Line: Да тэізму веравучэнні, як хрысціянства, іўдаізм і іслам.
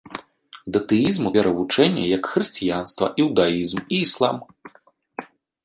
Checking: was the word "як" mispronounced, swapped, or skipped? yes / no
no